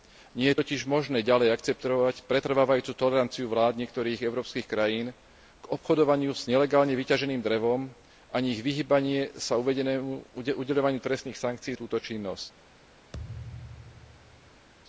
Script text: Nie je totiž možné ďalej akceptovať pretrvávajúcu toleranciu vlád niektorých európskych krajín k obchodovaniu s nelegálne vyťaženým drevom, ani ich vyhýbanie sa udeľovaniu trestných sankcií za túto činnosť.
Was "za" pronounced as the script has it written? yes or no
no